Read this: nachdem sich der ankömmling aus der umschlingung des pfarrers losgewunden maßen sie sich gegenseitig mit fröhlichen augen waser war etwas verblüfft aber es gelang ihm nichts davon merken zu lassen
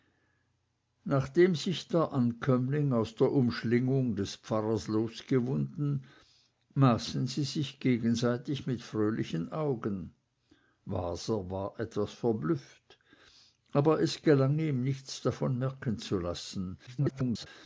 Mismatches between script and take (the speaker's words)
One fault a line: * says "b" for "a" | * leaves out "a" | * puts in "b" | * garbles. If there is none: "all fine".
* garbles